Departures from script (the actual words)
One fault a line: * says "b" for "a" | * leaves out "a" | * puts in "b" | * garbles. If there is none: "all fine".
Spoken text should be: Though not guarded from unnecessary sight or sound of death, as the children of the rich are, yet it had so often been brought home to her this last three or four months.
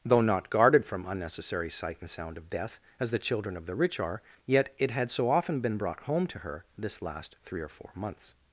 * says "and" for "or"